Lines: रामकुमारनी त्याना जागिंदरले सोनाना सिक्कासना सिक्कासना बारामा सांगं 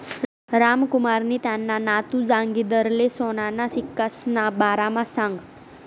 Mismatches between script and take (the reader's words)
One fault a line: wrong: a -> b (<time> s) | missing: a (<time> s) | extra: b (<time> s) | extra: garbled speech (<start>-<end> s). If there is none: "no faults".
extra: नातू (1.8 s)
missing: सिक्कासना (4.5 s)